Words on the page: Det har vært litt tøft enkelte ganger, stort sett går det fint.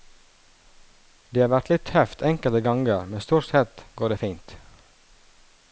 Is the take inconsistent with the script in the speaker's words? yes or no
yes